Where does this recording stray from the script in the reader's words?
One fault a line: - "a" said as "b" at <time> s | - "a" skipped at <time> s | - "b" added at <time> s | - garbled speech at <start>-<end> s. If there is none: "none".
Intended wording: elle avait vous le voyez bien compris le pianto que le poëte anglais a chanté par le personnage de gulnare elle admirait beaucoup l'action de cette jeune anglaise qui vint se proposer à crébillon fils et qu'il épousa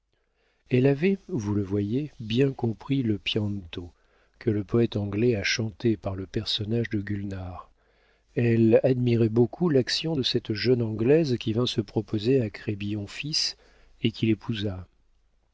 none